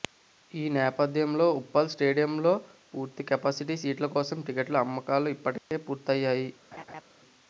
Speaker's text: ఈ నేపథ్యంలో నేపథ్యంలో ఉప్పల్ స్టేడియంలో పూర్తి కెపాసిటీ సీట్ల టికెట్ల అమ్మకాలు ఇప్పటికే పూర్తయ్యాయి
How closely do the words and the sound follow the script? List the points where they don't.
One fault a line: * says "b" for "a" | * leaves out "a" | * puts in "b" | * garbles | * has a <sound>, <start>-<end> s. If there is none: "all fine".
* leaves out "నేపథ్యంలో"
* puts in "కోసం"
* has a dropout, 5.6-5.7 s
* has a laugh, 6.7-7.0 s